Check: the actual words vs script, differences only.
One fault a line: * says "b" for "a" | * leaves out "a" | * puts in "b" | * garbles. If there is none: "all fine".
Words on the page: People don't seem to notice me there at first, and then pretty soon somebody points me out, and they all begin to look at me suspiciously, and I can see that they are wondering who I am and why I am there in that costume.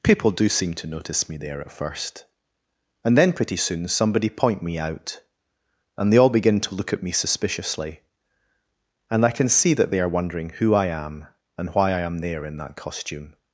* says "do" for "don't"
* says "point" for "points"